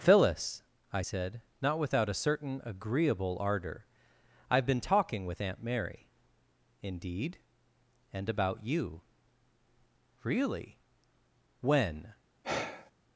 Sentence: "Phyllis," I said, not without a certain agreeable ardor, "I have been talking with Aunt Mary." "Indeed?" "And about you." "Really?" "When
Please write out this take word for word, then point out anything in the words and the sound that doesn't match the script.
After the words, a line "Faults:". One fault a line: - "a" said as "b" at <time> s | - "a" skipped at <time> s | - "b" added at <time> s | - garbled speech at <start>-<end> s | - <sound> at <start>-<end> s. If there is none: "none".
"Phyllis," I said, not without a certain agreeable ardor, "I have been talking with Aunt Mary." "Indeed?" "And about you." "Really?" "When
Faults:
- sigh at 12.4-12.9 s